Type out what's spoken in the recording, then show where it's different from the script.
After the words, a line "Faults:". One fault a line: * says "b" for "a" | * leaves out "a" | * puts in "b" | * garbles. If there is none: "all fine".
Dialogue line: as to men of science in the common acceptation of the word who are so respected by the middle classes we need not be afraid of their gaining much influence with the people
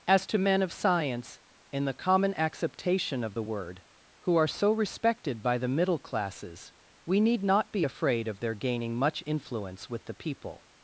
as to men of science in the common acceptation of the word who are so respected by the middle classes we need not be afraid of their gaining much influence with the people
Faults:
all fine